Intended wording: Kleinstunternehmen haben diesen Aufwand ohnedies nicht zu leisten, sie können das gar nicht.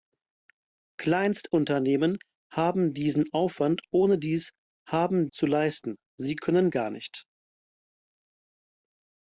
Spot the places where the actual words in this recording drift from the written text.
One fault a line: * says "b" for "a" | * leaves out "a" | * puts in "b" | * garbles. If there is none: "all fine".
* says "haben" for "nicht"
* leaves out "das"